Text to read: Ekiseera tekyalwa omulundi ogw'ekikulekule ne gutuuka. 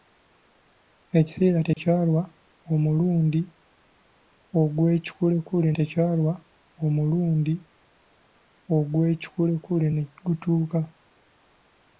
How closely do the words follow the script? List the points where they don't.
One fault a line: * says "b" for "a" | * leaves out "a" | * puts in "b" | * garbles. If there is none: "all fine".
* puts in "tekyalwa omulundi ogw'ekikulekule"